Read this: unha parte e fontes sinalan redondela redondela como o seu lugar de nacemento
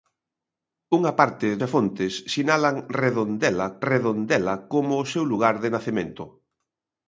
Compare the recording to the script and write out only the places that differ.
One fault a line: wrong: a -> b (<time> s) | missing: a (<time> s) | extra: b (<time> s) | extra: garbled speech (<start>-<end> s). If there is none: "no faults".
no faults